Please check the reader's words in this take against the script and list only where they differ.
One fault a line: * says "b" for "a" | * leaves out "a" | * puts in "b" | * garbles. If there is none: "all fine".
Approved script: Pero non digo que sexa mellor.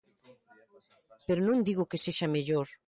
all fine